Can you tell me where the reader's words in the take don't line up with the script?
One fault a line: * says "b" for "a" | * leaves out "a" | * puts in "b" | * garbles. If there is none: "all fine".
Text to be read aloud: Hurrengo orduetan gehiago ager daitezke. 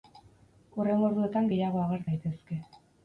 all fine